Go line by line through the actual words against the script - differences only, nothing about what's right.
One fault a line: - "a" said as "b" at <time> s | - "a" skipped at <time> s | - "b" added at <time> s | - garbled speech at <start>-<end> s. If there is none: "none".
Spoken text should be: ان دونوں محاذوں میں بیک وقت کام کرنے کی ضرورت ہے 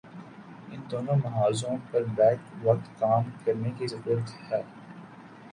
- "میں" said as "پر" at 1.9 s